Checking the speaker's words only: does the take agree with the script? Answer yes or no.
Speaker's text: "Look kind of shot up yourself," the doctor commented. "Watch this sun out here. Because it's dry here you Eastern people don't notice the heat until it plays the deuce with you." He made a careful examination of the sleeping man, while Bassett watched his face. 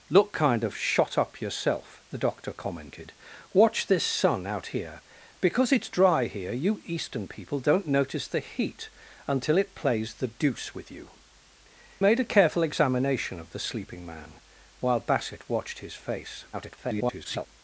no